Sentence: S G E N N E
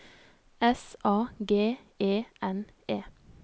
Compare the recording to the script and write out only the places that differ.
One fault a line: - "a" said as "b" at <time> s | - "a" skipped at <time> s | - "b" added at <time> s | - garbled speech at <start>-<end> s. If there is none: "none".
- "A" added at 1.0 s
- "N" skipped at 2.7 s